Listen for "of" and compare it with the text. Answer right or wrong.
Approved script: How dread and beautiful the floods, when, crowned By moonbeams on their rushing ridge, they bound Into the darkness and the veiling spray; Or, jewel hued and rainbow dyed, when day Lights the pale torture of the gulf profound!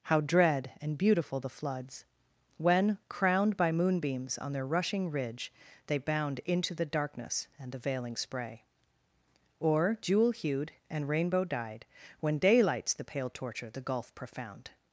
wrong